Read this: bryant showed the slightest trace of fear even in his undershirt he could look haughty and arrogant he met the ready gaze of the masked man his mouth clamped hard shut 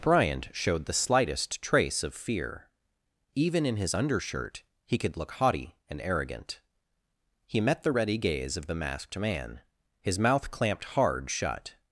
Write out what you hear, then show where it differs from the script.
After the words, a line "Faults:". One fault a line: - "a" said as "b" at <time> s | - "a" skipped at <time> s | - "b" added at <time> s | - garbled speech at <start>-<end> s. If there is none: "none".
bryant showed the slightest trace of fear even in his undershirt he could look haughty and arrogant he met the ready gaze of the masked man his mouth clamped hard shut
Faults:
none